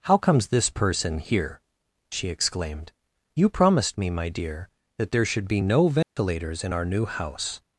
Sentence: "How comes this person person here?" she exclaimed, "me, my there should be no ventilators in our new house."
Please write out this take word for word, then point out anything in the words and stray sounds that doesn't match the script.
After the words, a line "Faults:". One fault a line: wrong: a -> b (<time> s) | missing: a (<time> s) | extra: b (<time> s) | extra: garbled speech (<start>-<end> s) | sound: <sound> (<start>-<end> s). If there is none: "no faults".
"How comes this person here?" she exclaimed, "you promised me, my dear, that there should be no ventilators in our new house."
Faults:
missing: person (1.2 s)
extra: you promised (3.4 s)
extra: dear that (4.3 s)
sound: dropout (6.0-6.2 s)